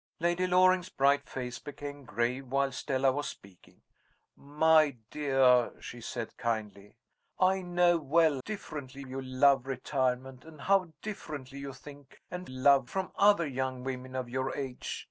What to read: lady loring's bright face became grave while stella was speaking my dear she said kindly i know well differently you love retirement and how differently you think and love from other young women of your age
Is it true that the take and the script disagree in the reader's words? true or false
false